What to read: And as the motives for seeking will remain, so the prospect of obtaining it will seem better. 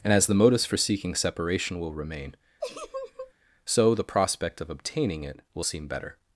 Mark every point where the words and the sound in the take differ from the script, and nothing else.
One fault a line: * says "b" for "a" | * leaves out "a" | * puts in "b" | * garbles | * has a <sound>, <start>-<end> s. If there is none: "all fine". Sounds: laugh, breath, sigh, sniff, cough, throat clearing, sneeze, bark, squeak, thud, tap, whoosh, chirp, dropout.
* puts in "separation"
* has a laugh, 2.6-3.3 s